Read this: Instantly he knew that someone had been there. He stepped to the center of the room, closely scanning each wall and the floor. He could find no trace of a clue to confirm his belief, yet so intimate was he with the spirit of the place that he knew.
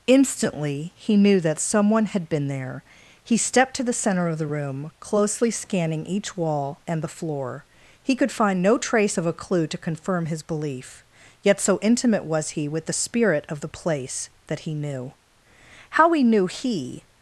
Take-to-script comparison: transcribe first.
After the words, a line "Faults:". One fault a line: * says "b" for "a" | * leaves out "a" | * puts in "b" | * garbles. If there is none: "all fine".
Instantly he knew that someone had been there. He stepped to the center of the room, closely scanning each wall and the floor. He could find no trace of a clue to confirm his belief, yet so intimate was he with the spirit of the place that he knew. How he knew he
Faults:
* puts in "How he knew he"